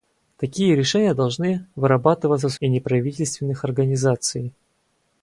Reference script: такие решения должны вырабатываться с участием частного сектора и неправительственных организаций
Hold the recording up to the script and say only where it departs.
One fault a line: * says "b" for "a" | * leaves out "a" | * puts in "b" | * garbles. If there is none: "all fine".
* leaves out "участием частного сектора"